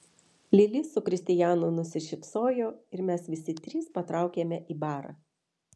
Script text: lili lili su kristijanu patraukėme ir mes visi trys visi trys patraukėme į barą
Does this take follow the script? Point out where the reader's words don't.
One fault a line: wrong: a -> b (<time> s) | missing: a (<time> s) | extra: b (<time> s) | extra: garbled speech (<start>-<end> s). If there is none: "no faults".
missing: lili (0.8 s)
wrong: patraukėme -> nusišypsojo (1.8 s)
missing: visi trys (3.9 s)